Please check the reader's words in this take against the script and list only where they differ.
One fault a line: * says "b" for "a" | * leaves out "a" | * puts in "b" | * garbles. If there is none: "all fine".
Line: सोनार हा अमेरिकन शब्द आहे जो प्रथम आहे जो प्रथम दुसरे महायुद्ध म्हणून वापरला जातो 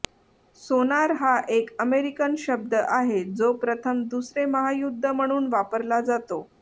* puts in "एक"
* leaves out "आहे जो प्रथम"